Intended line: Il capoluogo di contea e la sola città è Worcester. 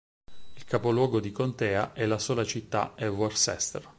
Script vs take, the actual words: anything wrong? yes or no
no